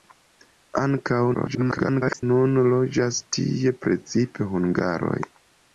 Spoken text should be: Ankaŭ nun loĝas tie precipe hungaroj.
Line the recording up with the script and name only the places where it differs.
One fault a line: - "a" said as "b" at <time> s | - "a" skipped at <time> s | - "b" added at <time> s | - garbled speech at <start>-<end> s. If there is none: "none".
- garbled speech at 1.3-2.2 s